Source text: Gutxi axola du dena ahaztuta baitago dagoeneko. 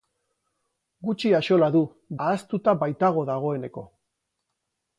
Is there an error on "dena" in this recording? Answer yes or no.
yes